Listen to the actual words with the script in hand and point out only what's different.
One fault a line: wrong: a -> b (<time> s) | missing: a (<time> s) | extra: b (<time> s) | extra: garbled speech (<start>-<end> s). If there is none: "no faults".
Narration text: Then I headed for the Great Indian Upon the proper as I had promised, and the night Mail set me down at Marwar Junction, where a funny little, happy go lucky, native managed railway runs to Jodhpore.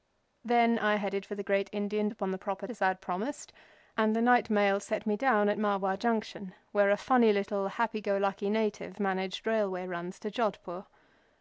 no faults